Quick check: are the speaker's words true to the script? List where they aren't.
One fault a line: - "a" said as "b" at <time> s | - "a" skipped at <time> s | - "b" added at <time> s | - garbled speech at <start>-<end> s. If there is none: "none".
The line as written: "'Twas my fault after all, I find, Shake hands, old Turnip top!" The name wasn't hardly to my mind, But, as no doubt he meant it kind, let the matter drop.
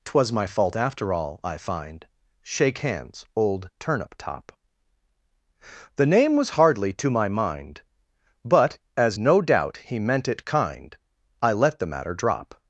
- "wasn't" said as "was" at 6.4 s
- "I" added at 11.4 s